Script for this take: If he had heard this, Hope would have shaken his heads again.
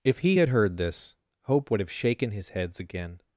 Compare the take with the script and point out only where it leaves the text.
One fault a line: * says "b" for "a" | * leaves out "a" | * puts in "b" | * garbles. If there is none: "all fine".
all fine